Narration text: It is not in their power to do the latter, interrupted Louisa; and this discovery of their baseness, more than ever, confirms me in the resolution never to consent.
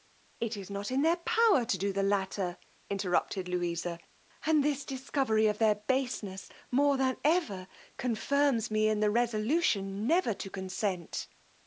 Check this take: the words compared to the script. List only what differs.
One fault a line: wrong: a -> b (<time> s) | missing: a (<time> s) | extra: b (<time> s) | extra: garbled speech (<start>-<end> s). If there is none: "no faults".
no faults